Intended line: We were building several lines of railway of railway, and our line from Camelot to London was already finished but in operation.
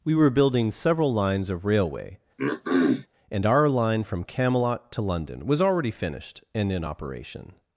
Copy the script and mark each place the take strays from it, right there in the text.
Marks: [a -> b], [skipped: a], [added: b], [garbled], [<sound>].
We were building several lines of railway [skipped: of railway,] [throat clearing] and our line from Camelot to London was already finished [but -> and] in operation.